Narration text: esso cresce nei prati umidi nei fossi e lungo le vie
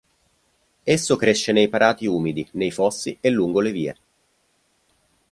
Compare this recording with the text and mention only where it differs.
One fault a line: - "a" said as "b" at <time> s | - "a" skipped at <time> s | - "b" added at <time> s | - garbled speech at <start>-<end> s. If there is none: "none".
none